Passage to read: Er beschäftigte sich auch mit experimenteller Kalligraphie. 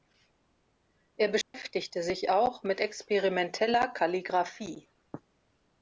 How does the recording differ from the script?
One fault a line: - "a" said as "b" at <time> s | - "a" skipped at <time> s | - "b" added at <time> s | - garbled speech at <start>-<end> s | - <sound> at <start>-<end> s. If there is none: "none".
- dropout at 1.4-1.5 s